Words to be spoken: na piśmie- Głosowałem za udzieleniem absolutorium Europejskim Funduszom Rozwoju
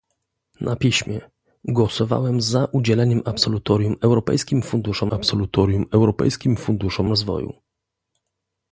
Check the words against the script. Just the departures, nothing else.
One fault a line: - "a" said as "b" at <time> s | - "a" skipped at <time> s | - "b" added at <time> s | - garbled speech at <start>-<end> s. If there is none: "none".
- "absolutorium Europejskim Funduszom" added at 5.1 s